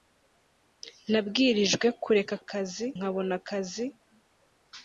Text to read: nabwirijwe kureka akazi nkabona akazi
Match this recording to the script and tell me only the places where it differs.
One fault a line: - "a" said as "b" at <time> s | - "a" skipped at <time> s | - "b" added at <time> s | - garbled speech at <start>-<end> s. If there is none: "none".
none